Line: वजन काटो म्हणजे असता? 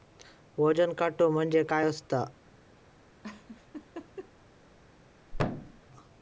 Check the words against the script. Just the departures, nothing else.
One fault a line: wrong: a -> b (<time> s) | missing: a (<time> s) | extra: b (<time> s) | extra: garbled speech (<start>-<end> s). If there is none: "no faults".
extra: काय (1.6 s)